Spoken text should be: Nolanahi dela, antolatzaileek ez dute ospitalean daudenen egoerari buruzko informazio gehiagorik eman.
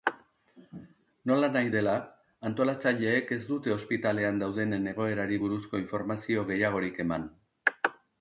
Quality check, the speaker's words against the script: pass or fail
pass